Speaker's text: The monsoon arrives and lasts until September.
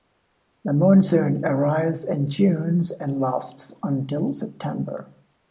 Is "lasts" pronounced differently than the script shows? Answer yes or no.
no